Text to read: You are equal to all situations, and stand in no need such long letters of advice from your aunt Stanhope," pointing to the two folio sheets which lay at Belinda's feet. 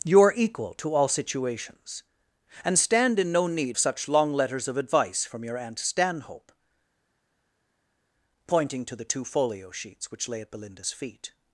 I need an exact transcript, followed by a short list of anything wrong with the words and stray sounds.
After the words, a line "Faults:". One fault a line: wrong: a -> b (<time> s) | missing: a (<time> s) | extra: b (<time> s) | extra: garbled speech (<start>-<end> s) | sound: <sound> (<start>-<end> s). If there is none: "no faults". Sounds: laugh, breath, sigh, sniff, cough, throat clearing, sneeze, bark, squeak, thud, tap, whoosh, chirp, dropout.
You are equal to all situations, and stand in no need such long letters of advice from your aunt Stanhope," pointing to the two folio sheets which lay at Belinda's feet.
Faults:
no faults